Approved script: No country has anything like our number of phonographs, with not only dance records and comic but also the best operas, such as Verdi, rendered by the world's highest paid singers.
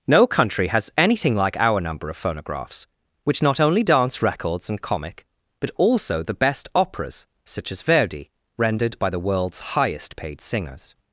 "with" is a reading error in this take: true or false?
true